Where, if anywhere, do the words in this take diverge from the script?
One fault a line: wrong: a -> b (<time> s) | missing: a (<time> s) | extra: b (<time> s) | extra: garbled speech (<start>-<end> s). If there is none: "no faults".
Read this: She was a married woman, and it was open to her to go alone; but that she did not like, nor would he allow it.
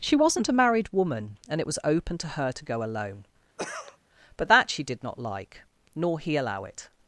wrong: was -> wasn't (0.1 s)
missing: would (6.2 s)